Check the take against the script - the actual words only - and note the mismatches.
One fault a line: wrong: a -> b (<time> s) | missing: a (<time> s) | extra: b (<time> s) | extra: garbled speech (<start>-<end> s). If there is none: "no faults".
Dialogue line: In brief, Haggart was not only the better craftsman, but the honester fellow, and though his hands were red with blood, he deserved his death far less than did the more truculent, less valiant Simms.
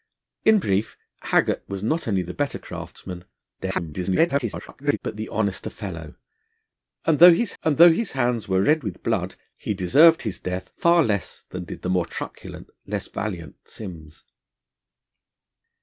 extra: garbled speech (3.6-5.0 s)
extra: and though his (7.6 s)